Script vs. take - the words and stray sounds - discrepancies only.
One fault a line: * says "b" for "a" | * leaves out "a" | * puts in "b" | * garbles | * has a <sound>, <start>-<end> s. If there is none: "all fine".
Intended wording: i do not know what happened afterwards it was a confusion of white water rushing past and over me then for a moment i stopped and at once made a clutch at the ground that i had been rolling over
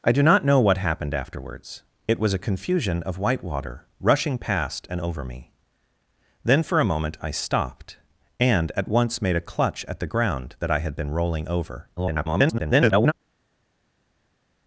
* garbles